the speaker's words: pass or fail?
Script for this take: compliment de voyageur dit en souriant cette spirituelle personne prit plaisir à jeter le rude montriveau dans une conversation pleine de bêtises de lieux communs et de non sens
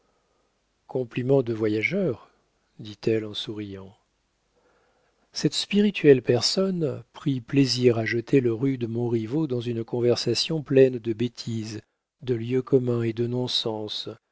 fail